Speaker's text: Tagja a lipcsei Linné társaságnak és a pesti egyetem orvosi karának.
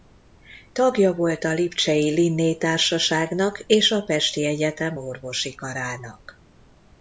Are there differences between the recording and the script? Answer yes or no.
yes